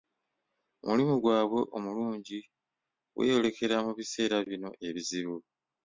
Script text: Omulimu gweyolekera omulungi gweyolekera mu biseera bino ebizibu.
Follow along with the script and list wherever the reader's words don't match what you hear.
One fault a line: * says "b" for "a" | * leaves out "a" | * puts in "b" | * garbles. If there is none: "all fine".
* says "gwabwe" for "gweyolekera"